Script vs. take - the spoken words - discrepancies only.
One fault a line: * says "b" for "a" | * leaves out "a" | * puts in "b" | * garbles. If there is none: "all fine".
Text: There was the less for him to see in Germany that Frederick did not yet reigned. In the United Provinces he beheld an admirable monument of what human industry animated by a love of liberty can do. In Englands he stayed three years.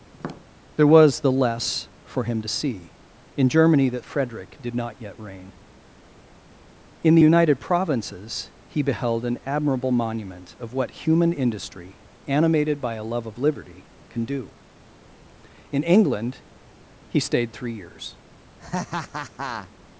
* says "reign" for "reigned"
* says "England" for "Englands"